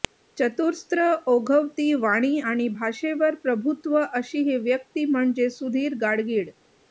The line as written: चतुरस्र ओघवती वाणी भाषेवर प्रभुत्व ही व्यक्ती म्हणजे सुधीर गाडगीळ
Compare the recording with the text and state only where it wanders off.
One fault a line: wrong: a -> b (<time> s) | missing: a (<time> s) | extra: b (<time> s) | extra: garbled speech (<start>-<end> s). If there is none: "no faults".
extra: आणि (2.4 s)
extra: अशी (4.0 s)